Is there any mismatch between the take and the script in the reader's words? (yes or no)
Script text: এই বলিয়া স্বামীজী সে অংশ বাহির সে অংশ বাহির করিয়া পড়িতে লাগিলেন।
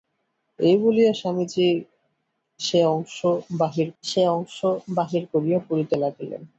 no